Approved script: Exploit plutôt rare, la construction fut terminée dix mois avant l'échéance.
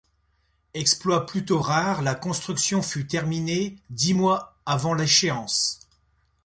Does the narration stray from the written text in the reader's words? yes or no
no